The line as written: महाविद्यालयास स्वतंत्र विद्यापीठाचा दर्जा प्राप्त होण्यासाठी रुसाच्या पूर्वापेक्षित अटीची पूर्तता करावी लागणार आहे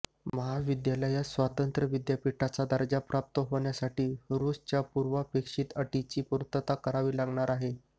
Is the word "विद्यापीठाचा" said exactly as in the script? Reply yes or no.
yes